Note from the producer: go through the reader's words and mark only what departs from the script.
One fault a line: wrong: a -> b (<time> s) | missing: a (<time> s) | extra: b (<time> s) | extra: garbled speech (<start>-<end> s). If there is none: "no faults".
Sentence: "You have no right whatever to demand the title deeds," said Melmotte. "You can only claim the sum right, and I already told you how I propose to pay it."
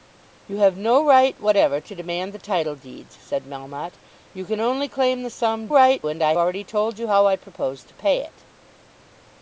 no faults